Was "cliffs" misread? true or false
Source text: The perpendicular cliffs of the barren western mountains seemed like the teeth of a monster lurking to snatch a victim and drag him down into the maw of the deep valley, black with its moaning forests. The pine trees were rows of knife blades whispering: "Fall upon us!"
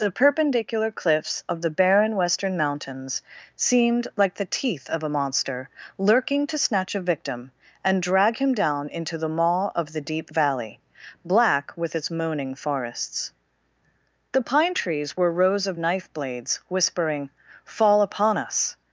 false